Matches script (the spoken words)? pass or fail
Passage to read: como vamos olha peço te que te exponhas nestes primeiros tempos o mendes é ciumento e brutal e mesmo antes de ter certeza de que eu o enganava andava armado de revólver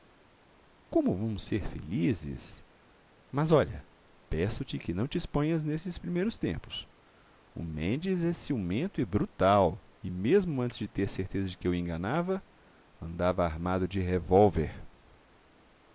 fail